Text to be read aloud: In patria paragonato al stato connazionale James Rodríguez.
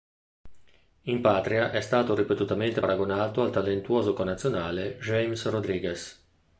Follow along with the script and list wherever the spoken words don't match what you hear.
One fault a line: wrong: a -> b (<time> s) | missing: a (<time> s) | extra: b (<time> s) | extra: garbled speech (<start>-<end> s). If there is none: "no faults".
extra: è stato ripetutamente (1.7 s)
wrong: stato -> talentuoso (3.5 s)